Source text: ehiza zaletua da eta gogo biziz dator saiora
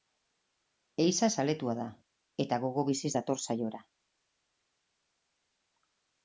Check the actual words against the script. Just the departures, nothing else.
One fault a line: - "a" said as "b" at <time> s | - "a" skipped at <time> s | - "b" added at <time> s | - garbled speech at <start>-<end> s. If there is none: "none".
none